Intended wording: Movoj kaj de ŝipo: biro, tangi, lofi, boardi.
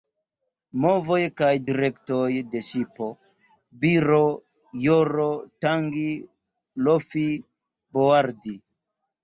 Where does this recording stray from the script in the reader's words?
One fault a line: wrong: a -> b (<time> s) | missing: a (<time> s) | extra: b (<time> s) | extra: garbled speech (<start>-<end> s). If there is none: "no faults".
extra: direktoj (1.7 s)
extra: joro (4.9 s)